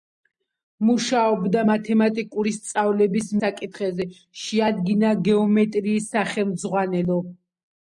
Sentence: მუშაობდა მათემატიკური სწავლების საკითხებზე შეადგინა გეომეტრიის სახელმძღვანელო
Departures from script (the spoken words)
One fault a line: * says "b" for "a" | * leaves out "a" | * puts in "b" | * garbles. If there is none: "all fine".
all fine